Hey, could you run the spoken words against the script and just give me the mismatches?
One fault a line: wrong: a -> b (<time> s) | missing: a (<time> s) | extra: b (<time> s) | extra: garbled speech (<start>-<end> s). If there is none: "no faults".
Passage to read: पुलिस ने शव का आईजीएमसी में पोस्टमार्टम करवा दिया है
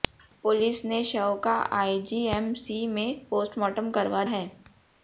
missing: दिया (4.2 s)